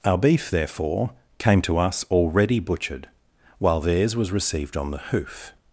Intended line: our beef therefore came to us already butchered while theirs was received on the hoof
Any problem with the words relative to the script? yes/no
no